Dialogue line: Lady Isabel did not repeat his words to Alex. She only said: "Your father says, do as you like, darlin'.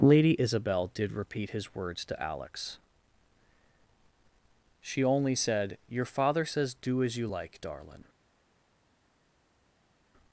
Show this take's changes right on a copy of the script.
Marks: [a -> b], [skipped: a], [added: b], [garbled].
Lady Isabel did [skipped: not] repeat his words to Alex. She only said: "Your father says, do as you like, darlin'.